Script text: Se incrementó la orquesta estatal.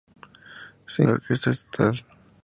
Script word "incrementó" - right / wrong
wrong